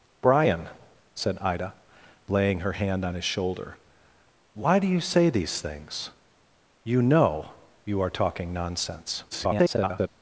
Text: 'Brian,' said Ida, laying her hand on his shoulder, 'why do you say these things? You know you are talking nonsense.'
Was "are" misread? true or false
false